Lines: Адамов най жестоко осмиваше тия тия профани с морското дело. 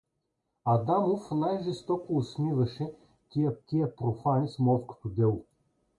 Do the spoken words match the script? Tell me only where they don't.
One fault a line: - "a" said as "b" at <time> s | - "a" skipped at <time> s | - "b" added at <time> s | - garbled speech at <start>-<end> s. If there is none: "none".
none